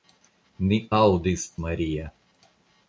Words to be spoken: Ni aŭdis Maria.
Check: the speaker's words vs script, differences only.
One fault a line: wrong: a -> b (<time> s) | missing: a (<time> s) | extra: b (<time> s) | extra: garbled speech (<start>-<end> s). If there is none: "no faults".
no faults